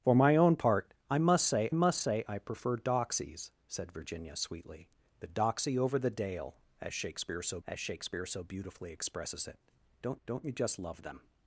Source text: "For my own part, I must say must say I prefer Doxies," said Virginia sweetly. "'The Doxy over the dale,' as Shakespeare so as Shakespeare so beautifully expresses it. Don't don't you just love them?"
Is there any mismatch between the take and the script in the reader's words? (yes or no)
no